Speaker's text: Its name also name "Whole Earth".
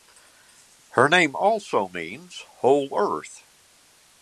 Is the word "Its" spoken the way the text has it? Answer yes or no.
no